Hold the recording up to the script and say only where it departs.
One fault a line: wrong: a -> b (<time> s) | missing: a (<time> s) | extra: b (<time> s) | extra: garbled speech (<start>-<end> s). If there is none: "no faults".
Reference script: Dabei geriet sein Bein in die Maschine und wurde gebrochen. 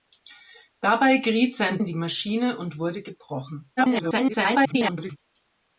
missing: Bein (1.8 s)
extra: garbled speech (3.8-5.2 s)